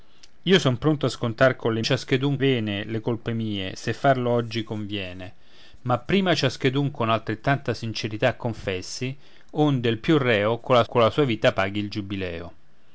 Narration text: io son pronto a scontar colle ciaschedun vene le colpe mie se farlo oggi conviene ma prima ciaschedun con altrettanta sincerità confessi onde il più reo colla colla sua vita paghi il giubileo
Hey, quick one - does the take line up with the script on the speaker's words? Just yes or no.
yes